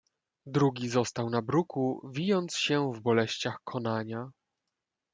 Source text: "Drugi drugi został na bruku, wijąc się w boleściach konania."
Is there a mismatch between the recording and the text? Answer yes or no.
yes